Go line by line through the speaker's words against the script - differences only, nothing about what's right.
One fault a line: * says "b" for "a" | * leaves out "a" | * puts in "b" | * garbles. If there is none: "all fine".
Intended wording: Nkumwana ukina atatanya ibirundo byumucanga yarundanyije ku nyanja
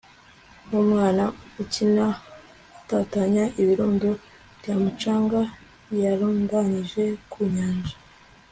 all fine